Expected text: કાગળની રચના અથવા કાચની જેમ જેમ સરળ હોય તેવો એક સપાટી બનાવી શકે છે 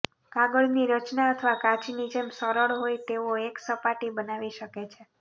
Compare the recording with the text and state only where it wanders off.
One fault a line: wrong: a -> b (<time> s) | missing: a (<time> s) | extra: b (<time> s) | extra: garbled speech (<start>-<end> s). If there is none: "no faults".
missing: જેમ (2.3 s)